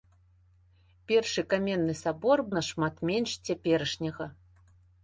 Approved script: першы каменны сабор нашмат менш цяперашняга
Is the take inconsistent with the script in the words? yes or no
no